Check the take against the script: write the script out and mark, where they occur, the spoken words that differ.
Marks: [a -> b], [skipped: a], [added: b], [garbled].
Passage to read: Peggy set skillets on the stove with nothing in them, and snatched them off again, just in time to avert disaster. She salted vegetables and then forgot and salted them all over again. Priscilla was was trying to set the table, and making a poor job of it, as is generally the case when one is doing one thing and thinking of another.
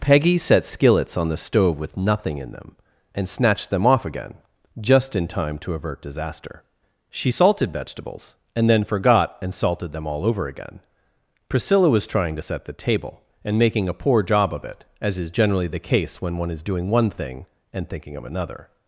Peggy set skillets on the stove with nothing in them, and snatched them off again, just in time to avert disaster. She salted vegetables and then forgot and salted them all over again. Priscilla was [skipped: was] trying to set the table, and making a poor job of it, as is generally the case when one is doing one thing and thinking of another.